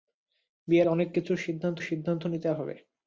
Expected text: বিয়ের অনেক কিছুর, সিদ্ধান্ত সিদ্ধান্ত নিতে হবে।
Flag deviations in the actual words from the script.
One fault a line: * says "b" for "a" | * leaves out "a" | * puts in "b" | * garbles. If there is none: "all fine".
all fine